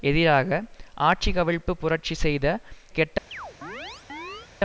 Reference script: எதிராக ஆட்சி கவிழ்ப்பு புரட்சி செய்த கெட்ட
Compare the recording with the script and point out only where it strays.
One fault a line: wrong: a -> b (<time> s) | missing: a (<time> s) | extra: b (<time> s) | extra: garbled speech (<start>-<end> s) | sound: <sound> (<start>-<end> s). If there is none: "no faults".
sound: chirp (3.3-4.5 s)